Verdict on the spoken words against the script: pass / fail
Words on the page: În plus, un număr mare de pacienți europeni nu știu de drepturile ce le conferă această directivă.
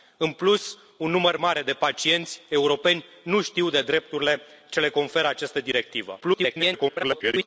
fail